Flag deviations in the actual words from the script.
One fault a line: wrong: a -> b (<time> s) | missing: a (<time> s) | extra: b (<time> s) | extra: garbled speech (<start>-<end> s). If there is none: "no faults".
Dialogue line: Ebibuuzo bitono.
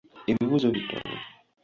no faults